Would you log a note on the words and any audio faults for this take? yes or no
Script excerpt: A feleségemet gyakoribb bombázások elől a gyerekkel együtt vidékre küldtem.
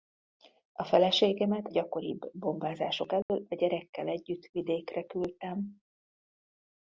yes